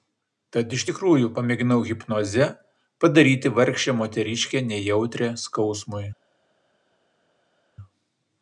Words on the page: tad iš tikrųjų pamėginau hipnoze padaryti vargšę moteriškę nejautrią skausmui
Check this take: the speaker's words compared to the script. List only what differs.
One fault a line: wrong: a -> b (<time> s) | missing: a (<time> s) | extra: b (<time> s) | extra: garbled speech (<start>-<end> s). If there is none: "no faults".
no faults